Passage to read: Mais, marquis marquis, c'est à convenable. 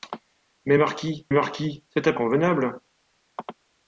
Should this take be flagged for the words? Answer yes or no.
no